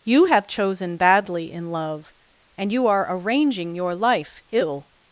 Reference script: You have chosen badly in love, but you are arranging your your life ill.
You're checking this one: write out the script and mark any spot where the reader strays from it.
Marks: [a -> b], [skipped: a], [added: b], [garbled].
You have chosen badly in love, [but -> and] you are arranging your [skipped: your] life ill.